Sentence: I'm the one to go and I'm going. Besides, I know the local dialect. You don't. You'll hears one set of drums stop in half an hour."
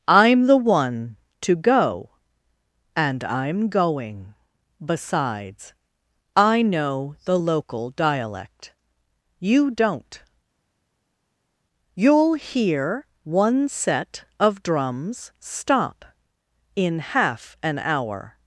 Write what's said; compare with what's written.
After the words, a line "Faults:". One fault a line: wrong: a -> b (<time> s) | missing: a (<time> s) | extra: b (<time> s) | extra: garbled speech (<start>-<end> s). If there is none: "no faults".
I'm the one to go and I'm going. Besides, I know the local dialect. You don't. You'll hear one set of drums stop in half an hour."
Faults:
wrong: hears -> hear (12.3 s)